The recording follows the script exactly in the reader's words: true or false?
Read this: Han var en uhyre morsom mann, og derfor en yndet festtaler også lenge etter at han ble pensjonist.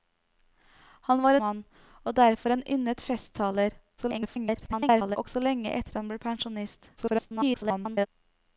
false